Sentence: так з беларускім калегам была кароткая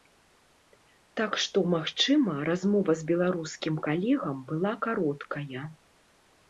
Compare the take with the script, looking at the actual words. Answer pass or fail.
fail